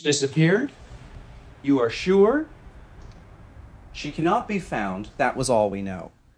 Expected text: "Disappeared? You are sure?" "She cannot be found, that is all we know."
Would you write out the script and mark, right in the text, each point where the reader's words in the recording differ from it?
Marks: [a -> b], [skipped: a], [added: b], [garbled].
"Disappeared? You are sure?" "She cannot be found, that [is -> was] all we know."